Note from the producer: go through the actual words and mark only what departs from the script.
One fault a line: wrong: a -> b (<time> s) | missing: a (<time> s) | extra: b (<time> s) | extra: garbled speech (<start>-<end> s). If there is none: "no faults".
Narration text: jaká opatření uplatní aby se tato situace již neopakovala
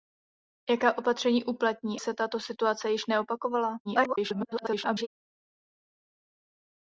missing: aby (2.0 s)
extra: garbled speech (3.8-5.1 s)